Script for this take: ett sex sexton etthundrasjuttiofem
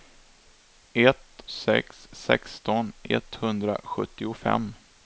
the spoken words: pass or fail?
pass